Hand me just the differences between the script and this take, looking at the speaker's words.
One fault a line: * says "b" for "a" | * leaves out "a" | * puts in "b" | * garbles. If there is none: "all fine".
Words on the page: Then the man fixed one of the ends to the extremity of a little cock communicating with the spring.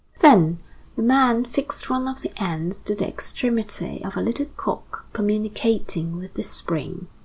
all fine